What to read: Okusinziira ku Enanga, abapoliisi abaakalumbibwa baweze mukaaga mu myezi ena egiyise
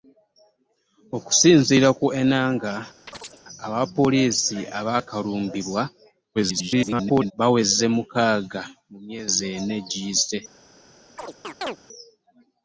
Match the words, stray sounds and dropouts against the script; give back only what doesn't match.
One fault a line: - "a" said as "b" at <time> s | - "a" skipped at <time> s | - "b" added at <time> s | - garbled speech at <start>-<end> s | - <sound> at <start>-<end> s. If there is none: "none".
- chirp at 3.1-3.4 s
- garbled speech at 6.3-7.3 s
- chirp at 11.2-11.8 s